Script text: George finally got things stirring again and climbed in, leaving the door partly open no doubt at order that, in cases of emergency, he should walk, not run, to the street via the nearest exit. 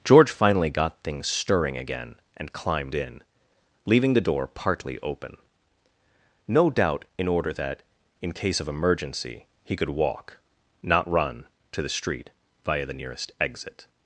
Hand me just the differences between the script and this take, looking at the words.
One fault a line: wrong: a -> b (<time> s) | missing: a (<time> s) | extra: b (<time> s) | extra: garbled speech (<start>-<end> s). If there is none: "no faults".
wrong: at -> in (7.2 s)
wrong: cases -> case (8.3 s)
wrong: should -> could (9.8 s)